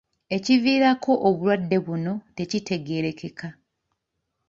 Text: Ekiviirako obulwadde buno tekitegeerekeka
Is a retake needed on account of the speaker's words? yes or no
no